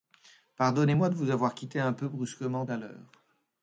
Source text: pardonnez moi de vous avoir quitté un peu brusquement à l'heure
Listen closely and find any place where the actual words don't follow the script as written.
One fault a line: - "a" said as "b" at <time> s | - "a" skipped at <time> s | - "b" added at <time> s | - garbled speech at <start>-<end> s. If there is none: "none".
none